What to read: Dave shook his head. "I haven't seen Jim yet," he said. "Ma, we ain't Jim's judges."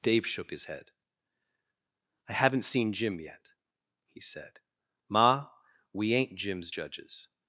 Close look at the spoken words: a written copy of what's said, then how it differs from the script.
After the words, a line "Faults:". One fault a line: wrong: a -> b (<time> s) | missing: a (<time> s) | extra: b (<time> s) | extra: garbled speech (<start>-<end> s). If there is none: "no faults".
Dave shook his head. "I haven't seen Jim yet," he said. "Ma, we ain't Jim's judges."
Faults:
no faults